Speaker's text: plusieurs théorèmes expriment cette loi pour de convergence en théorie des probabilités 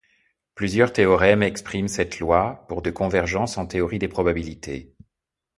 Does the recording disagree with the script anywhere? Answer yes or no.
no